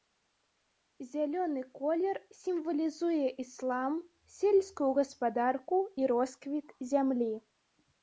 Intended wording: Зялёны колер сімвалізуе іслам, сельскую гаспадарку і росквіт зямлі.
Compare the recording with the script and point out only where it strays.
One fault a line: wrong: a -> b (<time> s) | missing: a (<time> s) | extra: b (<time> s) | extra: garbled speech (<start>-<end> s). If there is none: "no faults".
no faults